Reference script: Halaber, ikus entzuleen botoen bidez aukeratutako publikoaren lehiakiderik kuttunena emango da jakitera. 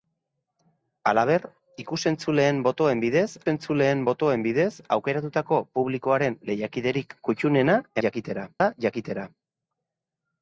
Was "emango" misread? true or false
true